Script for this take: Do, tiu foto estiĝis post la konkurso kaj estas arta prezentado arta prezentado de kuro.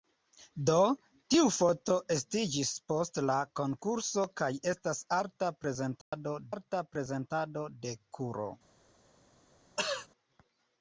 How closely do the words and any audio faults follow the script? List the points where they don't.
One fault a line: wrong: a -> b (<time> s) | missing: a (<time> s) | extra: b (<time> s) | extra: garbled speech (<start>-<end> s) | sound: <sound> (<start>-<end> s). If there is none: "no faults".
sound: dropout (6.0-6.1 s)
sound: throat clearing (9.8-10.1 s)